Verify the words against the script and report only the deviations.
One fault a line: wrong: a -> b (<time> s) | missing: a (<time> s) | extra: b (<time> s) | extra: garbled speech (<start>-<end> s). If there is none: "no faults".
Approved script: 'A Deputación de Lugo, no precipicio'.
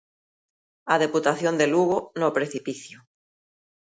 no faults